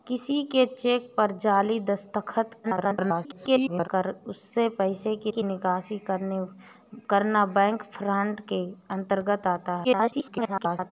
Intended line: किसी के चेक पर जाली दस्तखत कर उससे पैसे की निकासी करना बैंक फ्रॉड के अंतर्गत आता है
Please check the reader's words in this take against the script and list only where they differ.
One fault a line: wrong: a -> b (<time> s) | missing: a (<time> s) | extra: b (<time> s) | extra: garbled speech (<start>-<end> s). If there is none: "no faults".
extra: garbled speech (2.6-3.9 s)
extra: की (5.3 s)
extra: garbled speech (9.8-10.9 s)